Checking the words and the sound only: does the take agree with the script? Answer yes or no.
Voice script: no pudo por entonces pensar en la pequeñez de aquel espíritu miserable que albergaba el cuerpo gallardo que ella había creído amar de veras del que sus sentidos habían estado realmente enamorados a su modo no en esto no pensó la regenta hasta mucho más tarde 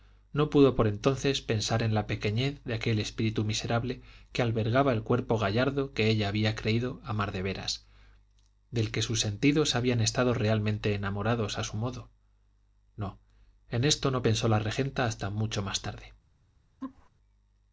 no